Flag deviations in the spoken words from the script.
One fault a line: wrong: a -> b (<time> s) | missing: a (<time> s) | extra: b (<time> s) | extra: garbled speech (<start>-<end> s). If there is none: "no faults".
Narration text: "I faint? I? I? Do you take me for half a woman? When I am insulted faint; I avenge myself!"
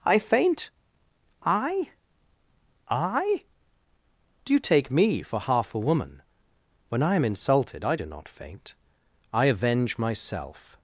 extra: I do not (7.8 s)